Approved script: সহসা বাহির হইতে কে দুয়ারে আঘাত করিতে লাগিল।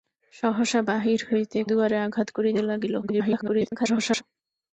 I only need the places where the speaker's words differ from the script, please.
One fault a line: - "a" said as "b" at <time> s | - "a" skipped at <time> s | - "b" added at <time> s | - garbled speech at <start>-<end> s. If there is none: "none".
- "কে" skipped at 1.6 s
- garbled speech at 3.0-4.2 s